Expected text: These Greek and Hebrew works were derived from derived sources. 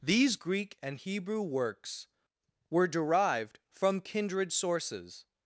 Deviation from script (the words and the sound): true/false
true